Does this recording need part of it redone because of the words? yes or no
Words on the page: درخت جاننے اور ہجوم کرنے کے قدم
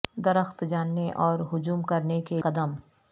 no